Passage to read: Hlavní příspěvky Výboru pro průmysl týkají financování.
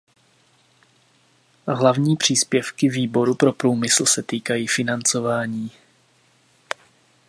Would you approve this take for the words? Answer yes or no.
no